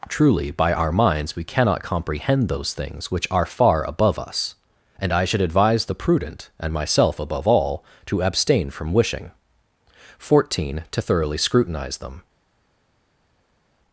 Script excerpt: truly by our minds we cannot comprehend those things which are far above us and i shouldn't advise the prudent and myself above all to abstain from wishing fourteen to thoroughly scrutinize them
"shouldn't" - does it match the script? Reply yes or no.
no